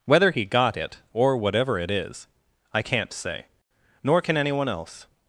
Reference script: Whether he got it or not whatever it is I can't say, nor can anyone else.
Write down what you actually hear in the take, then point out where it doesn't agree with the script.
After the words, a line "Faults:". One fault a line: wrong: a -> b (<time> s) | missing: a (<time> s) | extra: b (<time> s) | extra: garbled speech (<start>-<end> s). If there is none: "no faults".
Whether he got it or whatever it is I can't say, nor can anyone else.
Faults:
missing: not (1.4 s)